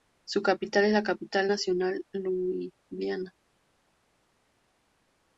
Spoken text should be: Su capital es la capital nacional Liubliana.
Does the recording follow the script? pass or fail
pass